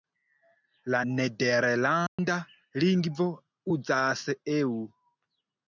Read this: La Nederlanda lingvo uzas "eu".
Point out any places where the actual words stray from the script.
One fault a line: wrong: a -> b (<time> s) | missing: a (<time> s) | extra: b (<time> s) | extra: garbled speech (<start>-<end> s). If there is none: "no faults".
no faults